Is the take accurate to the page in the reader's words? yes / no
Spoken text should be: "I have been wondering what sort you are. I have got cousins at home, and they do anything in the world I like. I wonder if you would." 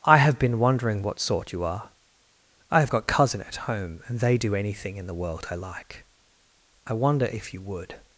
no